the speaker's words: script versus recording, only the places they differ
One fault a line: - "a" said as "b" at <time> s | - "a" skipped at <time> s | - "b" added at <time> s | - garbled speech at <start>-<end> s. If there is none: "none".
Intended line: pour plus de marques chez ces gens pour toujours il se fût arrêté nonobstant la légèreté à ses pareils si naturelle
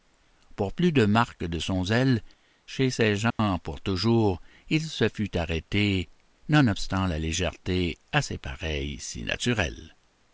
- "de son zèle" added at 1.4 s